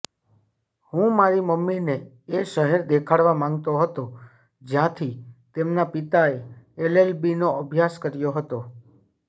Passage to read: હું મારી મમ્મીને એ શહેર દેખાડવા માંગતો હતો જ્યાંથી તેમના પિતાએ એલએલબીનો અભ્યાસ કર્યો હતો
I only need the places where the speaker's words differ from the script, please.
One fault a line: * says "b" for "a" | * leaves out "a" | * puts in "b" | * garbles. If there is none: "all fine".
all fine